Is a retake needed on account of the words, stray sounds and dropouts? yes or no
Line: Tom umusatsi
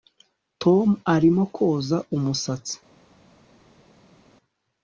yes